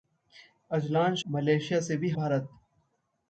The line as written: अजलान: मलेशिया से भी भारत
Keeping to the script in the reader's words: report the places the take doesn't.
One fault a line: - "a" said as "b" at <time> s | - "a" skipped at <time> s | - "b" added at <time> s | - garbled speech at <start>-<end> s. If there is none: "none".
none